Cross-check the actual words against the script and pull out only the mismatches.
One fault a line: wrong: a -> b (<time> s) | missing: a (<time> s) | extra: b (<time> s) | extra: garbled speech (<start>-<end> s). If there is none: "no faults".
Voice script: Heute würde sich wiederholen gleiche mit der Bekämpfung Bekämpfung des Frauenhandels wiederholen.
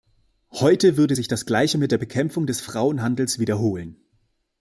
wrong: wiederholen -> das (1.3 s)
missing: Bekämpfung (2.5 s)